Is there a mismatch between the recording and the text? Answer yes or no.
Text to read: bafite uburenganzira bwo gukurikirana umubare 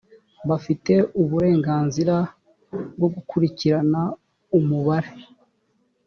no